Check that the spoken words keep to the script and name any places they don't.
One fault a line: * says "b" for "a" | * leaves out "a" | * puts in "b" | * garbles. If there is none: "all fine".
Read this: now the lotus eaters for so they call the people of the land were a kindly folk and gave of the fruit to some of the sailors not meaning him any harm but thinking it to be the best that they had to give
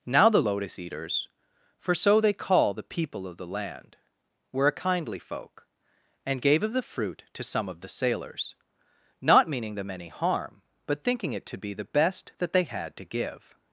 * says "them" for "him"